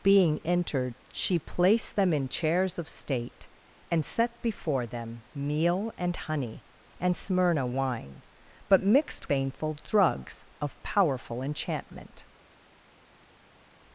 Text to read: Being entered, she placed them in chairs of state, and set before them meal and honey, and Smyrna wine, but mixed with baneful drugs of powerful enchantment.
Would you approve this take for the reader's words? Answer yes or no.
no